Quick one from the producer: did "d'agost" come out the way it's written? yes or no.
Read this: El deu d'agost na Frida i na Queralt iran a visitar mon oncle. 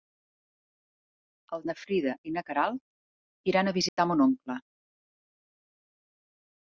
no